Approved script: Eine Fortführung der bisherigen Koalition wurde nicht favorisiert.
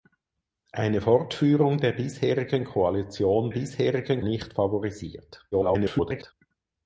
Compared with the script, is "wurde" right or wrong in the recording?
wrong